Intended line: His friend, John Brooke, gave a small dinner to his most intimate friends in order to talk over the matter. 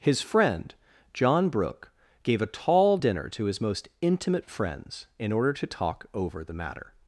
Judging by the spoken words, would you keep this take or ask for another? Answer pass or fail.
fail